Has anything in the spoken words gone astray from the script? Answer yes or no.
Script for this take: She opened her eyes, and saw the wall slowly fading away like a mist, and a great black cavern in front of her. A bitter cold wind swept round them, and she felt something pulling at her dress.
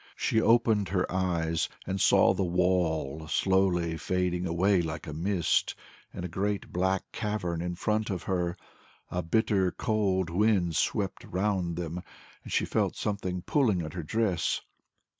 no